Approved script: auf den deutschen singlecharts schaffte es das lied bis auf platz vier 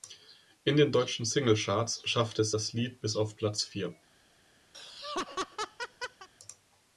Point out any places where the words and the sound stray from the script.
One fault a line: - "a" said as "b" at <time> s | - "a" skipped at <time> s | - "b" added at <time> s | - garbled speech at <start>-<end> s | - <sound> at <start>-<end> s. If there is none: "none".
- "auf" said as "in" at 0.6 s
- laugh at 4.7-6.3 s